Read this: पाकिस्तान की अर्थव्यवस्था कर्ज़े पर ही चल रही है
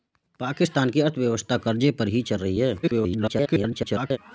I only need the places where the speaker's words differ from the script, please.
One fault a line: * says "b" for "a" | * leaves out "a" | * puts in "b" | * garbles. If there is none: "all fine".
* garbles